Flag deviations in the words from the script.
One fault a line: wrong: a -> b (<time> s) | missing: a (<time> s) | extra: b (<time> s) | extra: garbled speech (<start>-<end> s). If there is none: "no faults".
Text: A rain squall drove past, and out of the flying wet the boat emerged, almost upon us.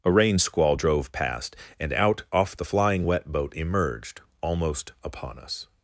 wrong: of -> off (2.3 s)
missing: the (3.3 s)